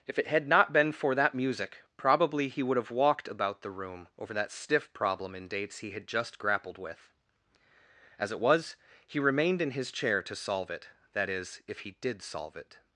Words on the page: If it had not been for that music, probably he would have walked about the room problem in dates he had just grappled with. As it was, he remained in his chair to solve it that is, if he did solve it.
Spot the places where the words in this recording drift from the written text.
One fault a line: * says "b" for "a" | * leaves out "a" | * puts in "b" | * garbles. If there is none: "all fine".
* puts in "over that stiff"